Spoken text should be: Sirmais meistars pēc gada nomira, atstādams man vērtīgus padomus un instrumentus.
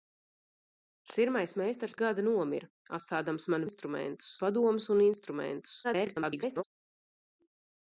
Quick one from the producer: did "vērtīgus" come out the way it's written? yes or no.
no